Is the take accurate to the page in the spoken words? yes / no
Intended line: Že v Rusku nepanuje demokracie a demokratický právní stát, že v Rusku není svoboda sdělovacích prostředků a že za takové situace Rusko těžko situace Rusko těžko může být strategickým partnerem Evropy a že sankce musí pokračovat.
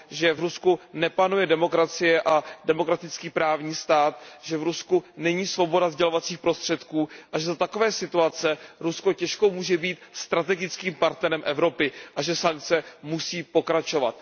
no